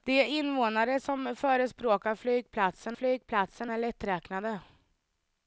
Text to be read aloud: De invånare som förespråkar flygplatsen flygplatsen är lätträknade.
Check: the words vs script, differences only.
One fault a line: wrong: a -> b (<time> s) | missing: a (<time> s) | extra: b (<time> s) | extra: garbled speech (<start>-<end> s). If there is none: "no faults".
no faults